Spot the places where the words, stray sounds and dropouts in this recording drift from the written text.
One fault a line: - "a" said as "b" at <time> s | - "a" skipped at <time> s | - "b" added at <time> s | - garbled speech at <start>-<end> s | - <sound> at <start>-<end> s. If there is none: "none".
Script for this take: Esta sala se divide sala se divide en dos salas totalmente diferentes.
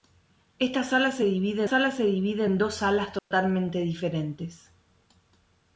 - dropout at 3.2-3.3 s